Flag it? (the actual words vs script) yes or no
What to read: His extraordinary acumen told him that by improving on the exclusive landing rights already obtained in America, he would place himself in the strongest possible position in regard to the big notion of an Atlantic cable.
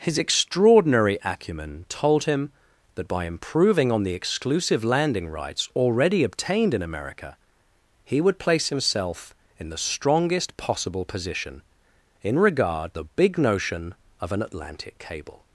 yes